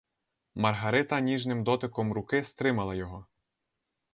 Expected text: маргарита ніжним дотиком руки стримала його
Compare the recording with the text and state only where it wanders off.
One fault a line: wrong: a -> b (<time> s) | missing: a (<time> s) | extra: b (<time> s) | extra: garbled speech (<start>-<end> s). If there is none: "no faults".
no faults